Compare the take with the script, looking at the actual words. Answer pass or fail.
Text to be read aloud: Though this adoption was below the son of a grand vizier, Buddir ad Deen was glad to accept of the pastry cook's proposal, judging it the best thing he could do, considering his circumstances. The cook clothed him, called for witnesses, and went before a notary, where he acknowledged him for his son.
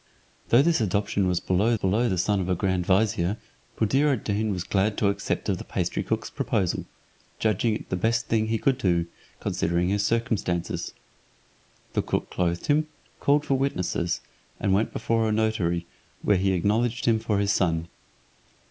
fail